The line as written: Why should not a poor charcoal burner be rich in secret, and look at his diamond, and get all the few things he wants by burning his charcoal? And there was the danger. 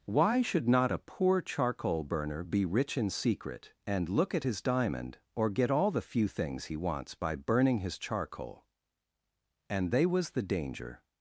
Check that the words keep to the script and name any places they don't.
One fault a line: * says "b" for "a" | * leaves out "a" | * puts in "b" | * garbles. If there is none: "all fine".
* says "or" for "and"
* says "they" for "there"